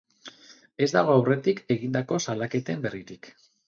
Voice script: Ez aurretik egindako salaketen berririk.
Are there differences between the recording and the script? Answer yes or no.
yes